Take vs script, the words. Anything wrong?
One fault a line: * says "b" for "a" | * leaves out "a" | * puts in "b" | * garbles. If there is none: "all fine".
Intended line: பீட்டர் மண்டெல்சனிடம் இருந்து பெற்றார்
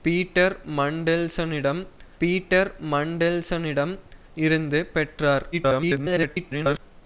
* puts in "பீட்டர் மண்டெல்சனிடம்"
* garbles